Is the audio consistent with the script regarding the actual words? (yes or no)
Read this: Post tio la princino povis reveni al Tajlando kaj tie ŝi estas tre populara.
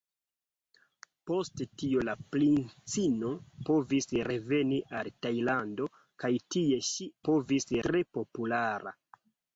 no